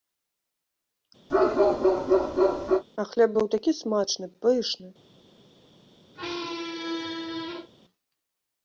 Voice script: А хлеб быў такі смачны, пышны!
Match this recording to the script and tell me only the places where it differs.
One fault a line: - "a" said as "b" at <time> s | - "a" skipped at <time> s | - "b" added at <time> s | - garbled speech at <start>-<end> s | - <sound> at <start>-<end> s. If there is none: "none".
- bark at 1.3-2.8 s
- squeak at 6.1-7.7 s